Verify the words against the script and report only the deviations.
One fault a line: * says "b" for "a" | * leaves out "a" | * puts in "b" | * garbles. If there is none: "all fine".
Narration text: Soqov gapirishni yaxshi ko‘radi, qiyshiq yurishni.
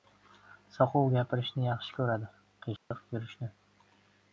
all fine